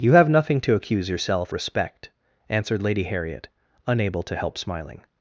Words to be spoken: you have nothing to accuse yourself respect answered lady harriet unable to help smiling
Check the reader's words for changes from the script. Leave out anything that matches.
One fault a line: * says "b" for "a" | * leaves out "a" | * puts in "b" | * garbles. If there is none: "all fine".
all fine